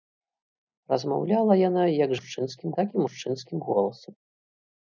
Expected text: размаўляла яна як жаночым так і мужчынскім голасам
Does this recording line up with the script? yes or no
no